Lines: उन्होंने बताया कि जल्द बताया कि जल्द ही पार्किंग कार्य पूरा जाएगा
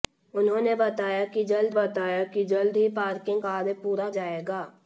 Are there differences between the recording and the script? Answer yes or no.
no